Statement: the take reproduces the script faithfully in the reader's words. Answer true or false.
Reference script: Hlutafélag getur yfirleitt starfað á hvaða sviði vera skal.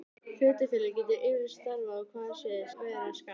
true